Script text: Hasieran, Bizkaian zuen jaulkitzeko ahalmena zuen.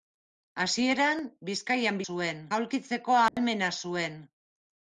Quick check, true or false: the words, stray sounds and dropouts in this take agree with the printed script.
false